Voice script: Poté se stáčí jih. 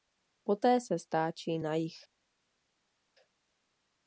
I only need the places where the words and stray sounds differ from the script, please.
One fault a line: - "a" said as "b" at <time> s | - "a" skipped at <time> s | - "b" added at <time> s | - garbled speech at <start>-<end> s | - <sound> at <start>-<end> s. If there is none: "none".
- "na" added at 1.6 s